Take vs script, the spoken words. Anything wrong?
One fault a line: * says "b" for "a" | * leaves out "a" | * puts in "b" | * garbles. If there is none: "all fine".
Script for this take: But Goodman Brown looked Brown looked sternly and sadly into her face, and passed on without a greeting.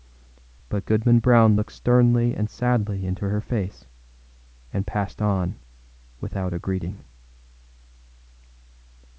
* leaves out "Brown looked"